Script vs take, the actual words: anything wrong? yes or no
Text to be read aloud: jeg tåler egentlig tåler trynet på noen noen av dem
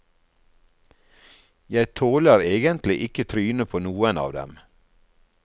yes